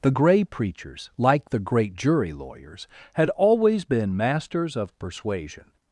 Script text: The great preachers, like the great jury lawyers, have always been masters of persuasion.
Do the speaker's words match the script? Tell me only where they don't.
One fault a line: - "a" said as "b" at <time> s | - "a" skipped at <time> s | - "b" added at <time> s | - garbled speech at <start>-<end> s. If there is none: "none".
- "great" said as "grey" at 0.1 s
- "have" said as "had" at 3.1 s